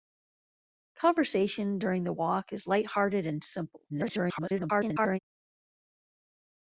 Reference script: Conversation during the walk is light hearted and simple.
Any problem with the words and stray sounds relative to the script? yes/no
yes